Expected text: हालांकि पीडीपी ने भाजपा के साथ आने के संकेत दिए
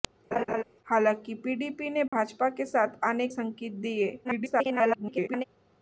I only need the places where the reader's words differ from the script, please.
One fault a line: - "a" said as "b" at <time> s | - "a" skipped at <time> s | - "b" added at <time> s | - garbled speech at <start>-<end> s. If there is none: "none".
- "के" skipped at 3.3 s
- garbled speech at 4.2-5.4 s